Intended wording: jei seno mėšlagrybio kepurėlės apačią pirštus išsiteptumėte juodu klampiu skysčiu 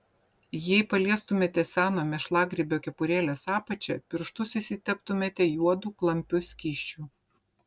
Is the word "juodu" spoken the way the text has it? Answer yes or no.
yes